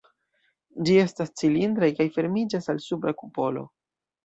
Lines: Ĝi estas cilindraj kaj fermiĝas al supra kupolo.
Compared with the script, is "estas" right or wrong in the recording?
right